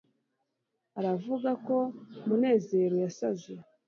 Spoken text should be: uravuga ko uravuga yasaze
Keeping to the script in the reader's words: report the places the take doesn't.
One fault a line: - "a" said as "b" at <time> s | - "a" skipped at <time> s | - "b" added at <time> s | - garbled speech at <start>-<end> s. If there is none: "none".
- "uravuga" said as "munezero" at 2.3 s